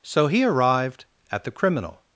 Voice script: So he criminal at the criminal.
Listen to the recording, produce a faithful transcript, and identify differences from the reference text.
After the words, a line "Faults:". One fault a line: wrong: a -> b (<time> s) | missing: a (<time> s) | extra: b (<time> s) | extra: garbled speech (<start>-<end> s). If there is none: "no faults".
So he arrived at the criminal.
Faults:
wrong: criminal -> arrived (0.4 s)